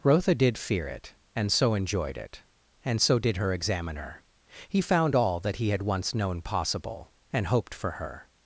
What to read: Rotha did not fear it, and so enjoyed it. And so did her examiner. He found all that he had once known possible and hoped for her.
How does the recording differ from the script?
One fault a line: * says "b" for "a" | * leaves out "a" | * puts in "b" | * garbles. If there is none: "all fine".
* leaves out "not"